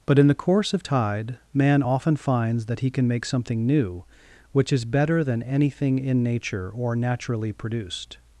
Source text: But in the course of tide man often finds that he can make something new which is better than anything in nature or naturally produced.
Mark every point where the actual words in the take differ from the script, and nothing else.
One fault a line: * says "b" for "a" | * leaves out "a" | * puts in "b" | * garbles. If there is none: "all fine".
all fine